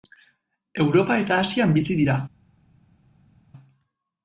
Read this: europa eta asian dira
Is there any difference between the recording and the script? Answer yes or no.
yes